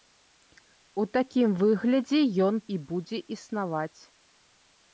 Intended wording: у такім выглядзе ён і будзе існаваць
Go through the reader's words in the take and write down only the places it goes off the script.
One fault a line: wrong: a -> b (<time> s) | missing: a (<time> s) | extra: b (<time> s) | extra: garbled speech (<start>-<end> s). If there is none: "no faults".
no faults